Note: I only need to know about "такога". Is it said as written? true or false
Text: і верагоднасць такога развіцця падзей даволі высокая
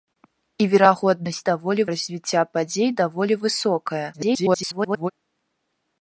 false